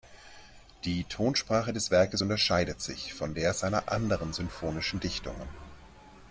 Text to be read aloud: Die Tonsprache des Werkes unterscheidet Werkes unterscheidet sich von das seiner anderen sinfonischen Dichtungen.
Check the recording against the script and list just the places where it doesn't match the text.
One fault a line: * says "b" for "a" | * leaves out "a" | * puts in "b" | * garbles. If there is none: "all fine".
* leaves out "Werkes unterscheidet"
* says "der" for "das"